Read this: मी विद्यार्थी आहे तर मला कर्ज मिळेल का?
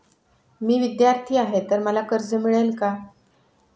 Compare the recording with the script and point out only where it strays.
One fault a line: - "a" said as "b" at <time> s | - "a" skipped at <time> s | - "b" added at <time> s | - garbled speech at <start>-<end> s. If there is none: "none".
none